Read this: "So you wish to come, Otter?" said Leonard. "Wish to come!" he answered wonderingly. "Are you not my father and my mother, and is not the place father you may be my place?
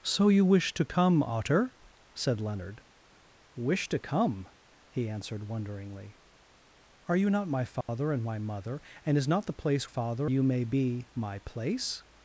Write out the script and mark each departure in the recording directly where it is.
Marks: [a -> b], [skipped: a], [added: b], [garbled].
"So you wish to come, Otter?" said Leonard. "Wish to come!" he answered wonderingly. "Are you not my father and my mother, and is not the place father you may be my place?